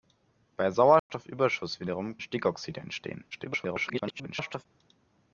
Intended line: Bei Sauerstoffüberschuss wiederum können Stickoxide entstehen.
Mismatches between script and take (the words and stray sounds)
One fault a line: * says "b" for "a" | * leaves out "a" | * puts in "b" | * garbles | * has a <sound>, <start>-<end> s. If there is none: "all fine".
* has a dropout, 1.0-1.1 s
* leaves out "können"
* garbles